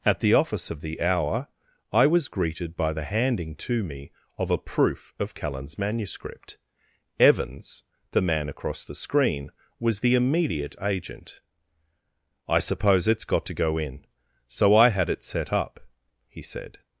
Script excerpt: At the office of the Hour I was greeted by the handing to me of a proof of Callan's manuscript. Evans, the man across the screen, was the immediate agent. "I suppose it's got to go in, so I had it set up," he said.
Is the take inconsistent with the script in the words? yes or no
no